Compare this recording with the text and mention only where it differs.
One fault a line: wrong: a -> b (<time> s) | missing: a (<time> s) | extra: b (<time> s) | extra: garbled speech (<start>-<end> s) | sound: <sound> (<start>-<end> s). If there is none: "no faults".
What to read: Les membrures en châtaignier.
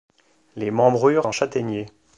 no faults